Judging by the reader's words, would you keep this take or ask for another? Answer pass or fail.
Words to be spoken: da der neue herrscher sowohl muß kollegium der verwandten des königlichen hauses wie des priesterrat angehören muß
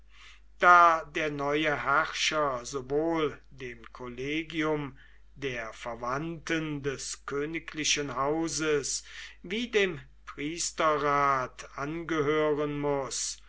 fail